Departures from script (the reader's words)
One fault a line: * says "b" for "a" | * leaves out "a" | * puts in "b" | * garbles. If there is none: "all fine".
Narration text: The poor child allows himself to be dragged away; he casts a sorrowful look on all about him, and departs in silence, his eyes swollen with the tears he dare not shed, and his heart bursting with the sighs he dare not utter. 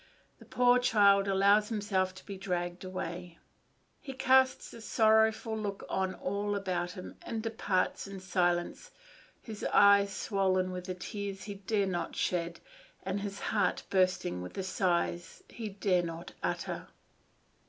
all fine